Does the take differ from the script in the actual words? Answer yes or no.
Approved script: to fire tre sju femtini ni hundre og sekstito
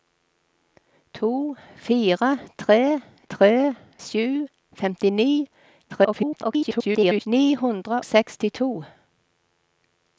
yes